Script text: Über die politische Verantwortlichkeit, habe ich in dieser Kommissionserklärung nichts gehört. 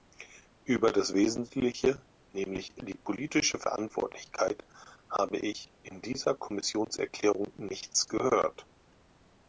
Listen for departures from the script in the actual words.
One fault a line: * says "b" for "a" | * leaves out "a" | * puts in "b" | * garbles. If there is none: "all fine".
* puts in "das Wesentliche nämlich"